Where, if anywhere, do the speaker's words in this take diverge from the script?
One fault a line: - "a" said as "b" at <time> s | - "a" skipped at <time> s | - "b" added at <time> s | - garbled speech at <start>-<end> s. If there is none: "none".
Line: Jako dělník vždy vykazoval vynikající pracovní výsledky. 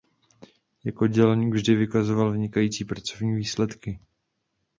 none